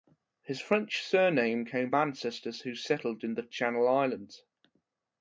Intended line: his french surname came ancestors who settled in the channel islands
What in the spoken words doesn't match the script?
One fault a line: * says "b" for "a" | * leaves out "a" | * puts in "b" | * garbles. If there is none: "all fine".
all fine